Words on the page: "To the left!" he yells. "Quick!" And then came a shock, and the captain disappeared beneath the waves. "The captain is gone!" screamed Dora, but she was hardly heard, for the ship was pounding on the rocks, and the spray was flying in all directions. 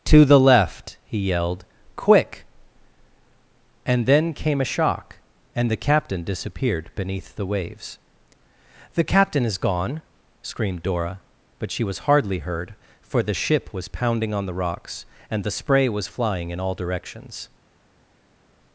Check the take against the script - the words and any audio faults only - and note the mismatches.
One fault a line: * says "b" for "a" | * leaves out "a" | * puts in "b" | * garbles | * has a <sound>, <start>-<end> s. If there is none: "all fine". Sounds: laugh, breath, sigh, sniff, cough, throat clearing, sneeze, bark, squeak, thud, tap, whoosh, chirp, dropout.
* says "yelled" for "yells"